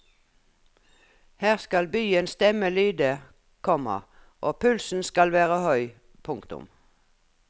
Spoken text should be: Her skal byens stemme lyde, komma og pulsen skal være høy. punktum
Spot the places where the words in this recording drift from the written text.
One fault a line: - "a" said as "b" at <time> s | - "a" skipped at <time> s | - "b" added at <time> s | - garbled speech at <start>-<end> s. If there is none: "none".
none